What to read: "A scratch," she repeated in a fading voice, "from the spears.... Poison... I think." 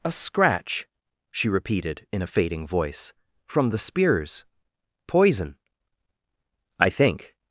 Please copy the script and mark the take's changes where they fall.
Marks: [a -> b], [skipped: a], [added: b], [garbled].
"A scratch," she repeated in a fading voice, "from the spears.... Poison... I think."